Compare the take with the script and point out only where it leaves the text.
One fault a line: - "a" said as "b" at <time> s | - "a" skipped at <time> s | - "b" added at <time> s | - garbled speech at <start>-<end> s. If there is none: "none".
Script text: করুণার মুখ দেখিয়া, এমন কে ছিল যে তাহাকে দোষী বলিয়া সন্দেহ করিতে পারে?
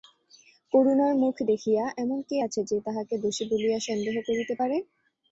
- "ছিল" said as "আছে" at 2.4 s